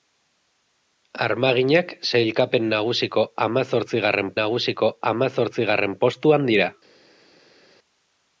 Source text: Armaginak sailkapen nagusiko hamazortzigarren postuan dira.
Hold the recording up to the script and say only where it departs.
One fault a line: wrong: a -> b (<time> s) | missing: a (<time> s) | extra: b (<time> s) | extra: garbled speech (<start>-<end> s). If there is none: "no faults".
extra: nagusiko hamazortzigarren (4.4 s)